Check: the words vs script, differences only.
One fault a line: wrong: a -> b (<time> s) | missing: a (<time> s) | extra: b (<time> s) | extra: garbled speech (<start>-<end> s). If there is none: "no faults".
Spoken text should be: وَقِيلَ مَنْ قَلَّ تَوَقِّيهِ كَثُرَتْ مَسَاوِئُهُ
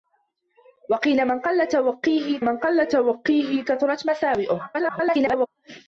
extra: مَنْ قَلَّ تَوَقِّيهِ (2.4 s)
extra: garbled speech (4.7-5.5 s)